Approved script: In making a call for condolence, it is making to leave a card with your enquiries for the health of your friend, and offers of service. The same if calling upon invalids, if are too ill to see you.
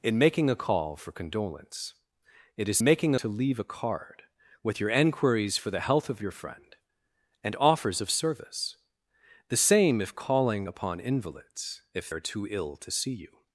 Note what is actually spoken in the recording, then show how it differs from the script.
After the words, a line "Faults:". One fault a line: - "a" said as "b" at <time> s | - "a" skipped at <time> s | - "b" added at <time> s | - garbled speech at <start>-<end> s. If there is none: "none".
In making a call for condolence, it is making to leave a card with your enquiries for the health of your friend, and offers of service. The same if calling upon invalids, if are too ill to see you.
Faults:
none